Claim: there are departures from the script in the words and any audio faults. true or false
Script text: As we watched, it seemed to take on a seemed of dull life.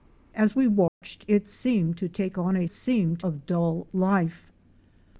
true